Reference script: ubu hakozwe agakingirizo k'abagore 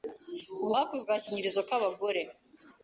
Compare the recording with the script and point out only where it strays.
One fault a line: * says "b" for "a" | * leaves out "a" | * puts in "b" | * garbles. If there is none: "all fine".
all fine